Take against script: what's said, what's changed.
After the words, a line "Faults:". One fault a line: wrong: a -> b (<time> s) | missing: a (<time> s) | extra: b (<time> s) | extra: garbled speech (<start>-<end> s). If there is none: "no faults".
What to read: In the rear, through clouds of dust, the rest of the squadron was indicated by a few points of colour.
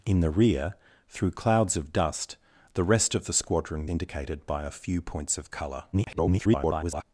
In the rear, through clouds of dust, the rest of the squadron indicated by a few points of colour. [garbled]
Faults:
missing: was (3.9 s)
extra: garbled speech (5.9-7.0 s)